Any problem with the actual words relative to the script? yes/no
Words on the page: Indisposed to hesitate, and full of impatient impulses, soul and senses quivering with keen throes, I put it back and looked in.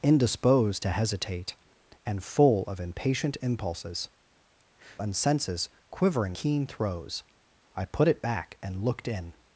yes